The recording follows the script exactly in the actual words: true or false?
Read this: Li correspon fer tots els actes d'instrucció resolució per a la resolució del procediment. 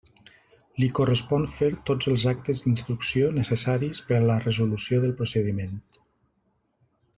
false